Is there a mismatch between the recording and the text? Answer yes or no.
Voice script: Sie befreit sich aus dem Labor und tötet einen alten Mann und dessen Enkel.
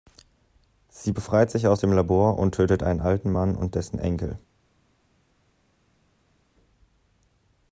no